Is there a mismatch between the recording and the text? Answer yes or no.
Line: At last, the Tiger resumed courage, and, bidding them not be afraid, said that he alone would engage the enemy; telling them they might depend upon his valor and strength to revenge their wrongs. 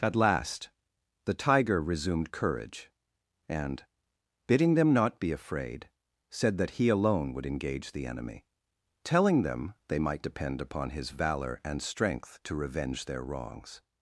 no